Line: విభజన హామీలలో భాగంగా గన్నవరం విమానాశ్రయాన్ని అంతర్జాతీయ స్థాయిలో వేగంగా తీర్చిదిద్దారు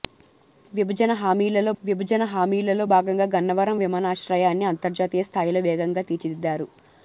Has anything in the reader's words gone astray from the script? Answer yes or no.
yes